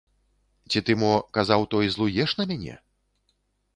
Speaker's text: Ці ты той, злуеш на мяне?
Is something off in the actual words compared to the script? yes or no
yes